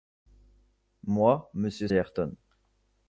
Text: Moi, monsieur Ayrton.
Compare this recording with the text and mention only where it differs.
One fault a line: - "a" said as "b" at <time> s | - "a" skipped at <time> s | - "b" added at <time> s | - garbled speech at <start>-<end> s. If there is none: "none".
none